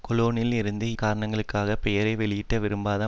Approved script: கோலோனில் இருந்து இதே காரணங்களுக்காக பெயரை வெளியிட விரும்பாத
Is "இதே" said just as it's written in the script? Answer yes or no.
no